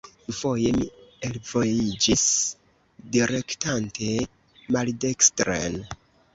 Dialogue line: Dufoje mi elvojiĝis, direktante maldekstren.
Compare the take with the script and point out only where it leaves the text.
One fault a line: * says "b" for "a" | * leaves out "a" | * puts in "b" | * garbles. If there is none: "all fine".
all fine